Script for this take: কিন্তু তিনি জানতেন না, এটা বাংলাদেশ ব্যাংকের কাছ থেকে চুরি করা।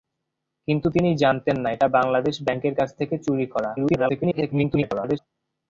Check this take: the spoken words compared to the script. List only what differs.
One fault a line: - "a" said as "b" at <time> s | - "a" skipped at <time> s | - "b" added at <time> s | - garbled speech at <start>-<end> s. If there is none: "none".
- garbled speech at 3.8-5.2 s